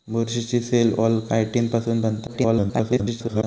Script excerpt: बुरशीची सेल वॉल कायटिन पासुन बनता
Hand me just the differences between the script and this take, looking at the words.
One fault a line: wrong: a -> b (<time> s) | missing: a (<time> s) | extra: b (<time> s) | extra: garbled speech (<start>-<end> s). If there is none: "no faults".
extra: garbled speech (2.3-3.4 s)